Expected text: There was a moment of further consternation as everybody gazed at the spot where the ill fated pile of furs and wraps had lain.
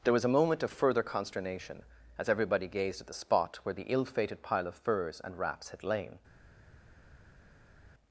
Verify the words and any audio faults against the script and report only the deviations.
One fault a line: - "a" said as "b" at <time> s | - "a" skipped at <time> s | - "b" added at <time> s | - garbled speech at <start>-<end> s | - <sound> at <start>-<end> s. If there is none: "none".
none